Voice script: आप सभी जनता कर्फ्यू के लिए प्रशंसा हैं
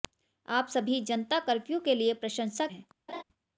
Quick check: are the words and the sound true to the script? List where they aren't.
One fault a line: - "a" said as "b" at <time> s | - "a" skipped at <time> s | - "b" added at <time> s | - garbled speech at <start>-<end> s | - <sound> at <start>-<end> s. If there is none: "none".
- laugh at 3.1-3.2 s